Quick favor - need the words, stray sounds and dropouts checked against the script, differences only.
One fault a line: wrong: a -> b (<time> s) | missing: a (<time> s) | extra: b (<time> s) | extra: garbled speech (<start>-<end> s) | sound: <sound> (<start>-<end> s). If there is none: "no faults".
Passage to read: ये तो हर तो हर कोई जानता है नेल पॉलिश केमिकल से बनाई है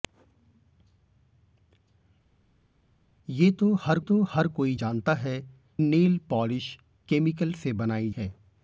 no faults